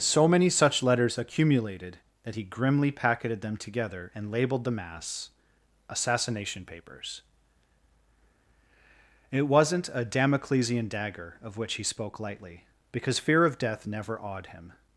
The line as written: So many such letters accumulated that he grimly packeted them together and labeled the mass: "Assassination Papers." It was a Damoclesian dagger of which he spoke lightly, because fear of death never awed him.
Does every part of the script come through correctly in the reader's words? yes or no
no